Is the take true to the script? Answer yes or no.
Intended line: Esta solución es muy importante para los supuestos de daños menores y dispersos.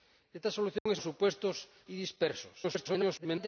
no